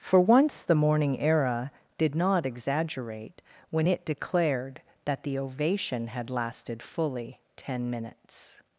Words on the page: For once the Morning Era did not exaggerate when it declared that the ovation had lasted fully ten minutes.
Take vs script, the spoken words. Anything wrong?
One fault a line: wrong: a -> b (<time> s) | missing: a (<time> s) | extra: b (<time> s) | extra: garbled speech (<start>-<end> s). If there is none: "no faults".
no faults